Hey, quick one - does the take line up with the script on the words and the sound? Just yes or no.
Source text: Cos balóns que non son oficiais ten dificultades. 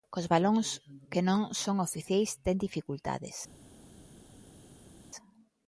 yes